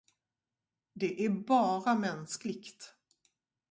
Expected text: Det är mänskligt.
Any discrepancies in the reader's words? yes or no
yes